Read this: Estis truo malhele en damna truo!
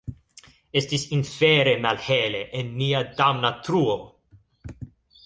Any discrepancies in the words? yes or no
yes